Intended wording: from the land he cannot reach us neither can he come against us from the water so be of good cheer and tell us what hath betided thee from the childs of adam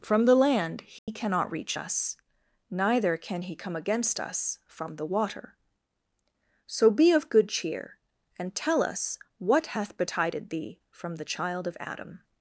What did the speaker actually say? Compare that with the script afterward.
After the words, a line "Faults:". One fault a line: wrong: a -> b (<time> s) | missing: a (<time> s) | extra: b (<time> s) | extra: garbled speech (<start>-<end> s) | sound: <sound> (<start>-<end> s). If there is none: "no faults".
from the land he cannot reach us neither can he come against us from the water so be of good cheer and tell us what hath betided thee from the child of adam
Faults:
sound: dropout (1.0-1.1 s)
wrong: childs -> child (11.2 s)